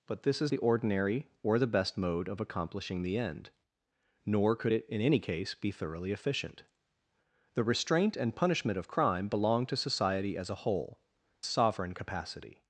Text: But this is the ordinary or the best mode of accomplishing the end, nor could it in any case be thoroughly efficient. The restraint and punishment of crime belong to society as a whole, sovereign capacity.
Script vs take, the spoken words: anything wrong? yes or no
no